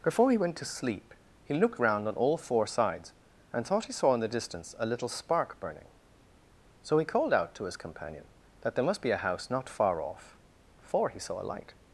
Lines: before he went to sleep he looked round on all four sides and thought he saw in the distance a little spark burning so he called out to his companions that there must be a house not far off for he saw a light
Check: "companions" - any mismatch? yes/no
yes